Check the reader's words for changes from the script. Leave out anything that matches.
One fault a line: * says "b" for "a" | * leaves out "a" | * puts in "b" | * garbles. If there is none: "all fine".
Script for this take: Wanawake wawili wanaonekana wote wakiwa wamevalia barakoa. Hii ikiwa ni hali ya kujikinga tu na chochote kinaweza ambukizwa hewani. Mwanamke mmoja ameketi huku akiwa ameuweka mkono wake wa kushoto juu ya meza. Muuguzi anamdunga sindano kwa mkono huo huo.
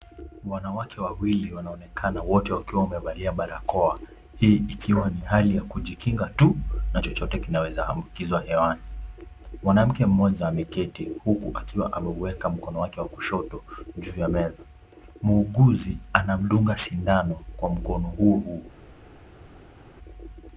all fine